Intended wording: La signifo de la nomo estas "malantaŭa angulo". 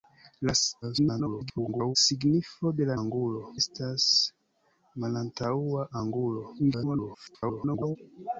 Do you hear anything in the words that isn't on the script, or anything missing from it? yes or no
yes